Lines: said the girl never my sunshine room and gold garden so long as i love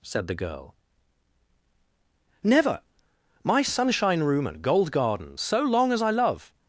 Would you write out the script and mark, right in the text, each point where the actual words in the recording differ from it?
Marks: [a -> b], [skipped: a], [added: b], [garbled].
said the girl never my sunshine room and gold garden so long as i love